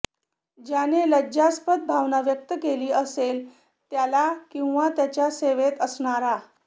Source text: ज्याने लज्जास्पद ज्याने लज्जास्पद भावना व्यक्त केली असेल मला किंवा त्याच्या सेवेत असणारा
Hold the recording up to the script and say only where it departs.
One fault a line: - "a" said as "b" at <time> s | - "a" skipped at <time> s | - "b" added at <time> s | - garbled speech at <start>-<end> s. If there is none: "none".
- "ज्याने लज्जास्पद" skipped at 1.8 s
- "मला" said as "त्याला" at 3.9 s